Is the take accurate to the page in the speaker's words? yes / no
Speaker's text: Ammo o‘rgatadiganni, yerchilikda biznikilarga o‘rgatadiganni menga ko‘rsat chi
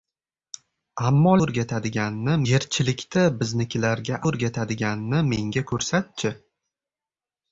yes